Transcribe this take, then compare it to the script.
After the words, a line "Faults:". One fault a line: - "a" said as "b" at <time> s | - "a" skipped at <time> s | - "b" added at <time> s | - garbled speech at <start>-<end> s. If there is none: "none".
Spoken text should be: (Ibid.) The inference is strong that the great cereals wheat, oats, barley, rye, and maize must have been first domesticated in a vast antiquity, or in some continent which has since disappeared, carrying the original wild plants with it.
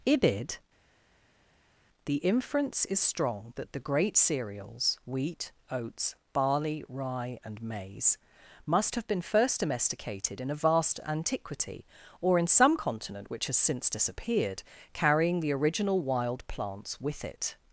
(Ibid.) The inference is strong that the great cereals wheat, oats, barley, rye, and maize must have been first domesticated in a vast antiquity, or in some continent which has since disappeared, carrying the original wild plants with it.
Faults:
none